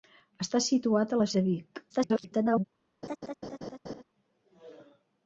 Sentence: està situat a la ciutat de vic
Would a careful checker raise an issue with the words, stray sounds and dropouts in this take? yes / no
yes